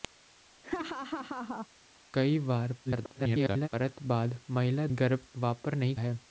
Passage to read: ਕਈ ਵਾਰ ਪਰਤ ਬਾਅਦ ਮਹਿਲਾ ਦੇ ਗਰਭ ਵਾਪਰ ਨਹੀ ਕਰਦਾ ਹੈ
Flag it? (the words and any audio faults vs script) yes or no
yes